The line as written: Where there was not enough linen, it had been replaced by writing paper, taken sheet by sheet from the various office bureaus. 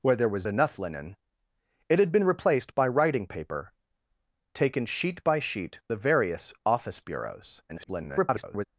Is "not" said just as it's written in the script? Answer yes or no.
no